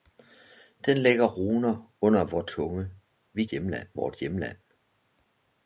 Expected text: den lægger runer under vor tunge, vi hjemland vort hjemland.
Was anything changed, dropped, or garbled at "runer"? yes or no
no